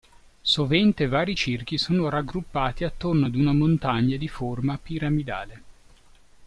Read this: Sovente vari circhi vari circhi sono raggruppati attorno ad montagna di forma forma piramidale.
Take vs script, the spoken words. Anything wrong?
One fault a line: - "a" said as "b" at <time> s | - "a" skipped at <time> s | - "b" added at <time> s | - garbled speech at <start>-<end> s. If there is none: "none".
- "vari circhi" skipped at 1.8 s
- "una" added at 3.3 s
- "forma" skipped at 4.8 s